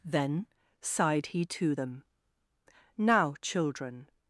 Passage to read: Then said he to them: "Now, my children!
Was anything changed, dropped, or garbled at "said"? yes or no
yes